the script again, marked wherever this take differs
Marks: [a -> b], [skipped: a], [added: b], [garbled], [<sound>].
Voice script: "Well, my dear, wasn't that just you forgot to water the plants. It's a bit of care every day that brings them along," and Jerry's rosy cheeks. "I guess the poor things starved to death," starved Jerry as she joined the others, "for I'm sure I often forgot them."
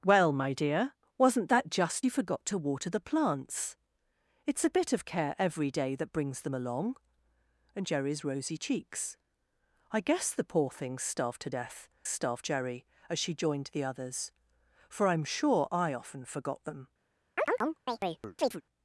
"Well, my dear, wasn't that just you forgot to water the plants. It's a bit of care every day that brings them along," and Jerry's rosy cheeks. "I guess the poor things starved to death," starved Jerry as she joined the others, "for I'm sure I often forgot them." [chirp]